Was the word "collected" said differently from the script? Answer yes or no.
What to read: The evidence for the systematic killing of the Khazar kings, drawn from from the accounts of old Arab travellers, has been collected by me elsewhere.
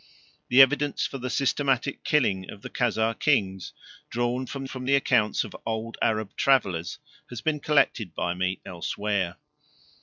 no